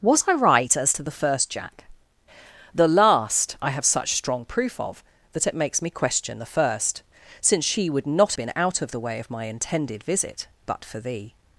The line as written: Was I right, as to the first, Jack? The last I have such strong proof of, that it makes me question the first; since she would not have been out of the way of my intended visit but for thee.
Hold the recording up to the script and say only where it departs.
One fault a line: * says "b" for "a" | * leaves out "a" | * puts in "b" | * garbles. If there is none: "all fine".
* leaves out "have"